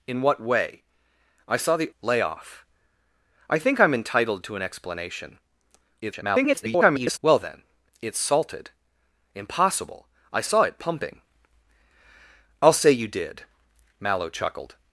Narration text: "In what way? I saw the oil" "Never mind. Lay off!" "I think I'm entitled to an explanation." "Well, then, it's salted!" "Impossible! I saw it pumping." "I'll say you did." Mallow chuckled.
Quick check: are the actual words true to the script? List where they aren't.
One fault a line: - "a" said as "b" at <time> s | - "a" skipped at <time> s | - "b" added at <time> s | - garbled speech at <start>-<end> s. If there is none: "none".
- "oil Never mind" skipped at 1.9 s
- garbled speech at 6.0-7.2 s